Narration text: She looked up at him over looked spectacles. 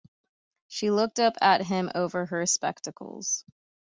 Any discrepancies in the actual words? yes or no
yes